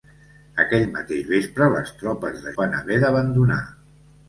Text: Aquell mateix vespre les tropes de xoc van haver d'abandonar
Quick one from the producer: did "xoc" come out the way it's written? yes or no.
no